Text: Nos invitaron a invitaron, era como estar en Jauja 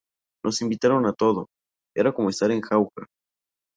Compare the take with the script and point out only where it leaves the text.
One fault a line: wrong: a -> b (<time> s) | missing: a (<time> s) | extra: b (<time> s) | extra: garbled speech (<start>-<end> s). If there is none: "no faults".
wrong: invitaron -> todo (1.1 s)